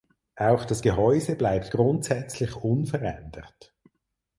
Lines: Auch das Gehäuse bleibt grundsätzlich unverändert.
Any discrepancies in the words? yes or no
no